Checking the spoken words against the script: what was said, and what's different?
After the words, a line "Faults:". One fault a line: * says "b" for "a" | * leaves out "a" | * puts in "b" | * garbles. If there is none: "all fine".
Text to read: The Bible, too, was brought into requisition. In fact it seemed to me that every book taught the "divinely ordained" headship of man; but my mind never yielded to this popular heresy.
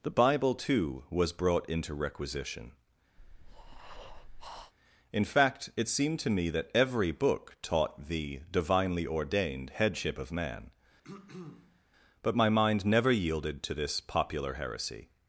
The Bible, too, was brought into requisition. In fact it seemed to me that every book taught the "divinely ordained" headship of man; but my mind never yielded to this popular heresy.
Faults:
all fine